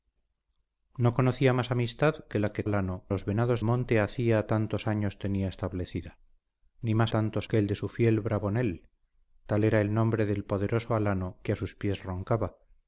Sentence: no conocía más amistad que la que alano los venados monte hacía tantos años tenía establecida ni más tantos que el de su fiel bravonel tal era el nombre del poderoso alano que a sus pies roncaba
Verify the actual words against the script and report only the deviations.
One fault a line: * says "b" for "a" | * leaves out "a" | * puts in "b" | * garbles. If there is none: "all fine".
all fine